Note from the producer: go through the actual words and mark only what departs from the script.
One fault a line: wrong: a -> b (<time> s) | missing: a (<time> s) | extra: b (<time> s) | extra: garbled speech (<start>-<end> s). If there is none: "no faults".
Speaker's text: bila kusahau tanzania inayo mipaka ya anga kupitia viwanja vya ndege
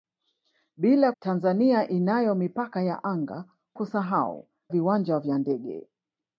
missing: kusahau (1.1 s)
wrong: kupitia -> kusahau (3.7 s)